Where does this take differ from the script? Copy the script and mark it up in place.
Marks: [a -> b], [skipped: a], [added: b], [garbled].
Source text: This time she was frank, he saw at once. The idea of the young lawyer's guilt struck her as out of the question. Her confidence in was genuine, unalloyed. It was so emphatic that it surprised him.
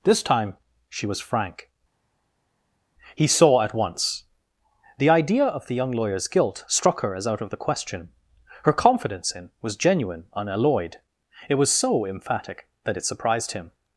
This time she was frank, he saw at once. The idea of the young lawyer's guilt struck her as out of the question. Her confidence in was genuine, unalloyed. It was so emphatic that it surprised him.